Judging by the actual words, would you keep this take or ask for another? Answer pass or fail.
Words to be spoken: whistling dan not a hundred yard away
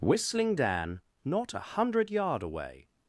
pass